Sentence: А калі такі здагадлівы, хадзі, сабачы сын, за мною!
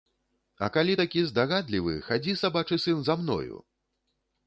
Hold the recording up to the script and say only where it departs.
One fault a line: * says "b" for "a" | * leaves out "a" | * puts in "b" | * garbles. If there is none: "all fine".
all fine